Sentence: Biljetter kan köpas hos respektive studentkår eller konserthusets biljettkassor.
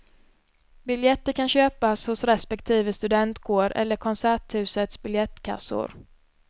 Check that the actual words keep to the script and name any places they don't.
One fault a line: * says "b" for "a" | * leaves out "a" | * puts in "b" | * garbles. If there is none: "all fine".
all fine